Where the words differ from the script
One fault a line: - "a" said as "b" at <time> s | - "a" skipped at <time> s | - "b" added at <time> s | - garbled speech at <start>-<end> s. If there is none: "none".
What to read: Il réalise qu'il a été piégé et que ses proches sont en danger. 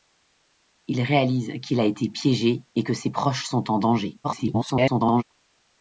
- garbled speech at 4.2-5.2 s